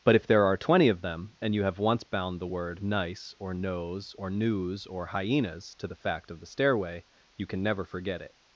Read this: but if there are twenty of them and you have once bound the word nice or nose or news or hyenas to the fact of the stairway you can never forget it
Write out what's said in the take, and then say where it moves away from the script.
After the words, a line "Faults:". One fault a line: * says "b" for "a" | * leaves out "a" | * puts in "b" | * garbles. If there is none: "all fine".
but if there are twenty of them and you have once bound the word nice or nose or news or hyenas to the fact of the stairway you can never forget it
Faults:
all fine